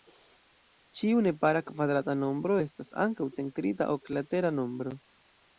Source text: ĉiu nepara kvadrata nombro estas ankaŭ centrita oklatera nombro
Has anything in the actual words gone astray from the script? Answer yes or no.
no